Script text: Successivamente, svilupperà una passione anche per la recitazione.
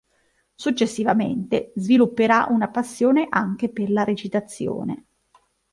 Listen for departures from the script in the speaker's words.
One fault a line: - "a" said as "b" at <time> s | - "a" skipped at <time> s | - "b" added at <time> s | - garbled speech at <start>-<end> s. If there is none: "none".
none